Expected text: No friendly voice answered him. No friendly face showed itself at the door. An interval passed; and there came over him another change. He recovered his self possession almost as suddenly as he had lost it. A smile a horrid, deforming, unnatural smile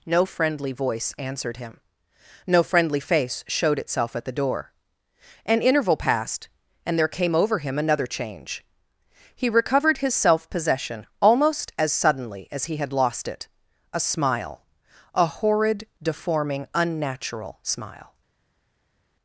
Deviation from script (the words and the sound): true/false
false